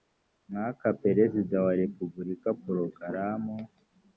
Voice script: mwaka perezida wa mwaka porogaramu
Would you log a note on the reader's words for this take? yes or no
yes